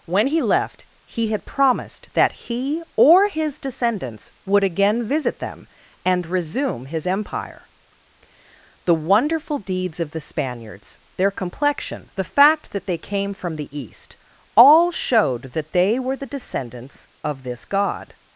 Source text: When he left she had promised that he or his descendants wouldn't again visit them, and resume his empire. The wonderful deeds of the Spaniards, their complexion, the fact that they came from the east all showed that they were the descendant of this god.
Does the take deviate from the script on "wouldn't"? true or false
true